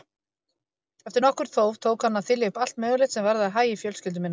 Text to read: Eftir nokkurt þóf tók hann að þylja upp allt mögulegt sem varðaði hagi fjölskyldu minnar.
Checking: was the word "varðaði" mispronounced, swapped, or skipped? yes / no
no